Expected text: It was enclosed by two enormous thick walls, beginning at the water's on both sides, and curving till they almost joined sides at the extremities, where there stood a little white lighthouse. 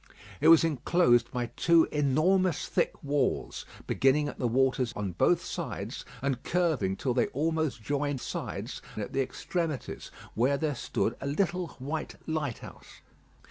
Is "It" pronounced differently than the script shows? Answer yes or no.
no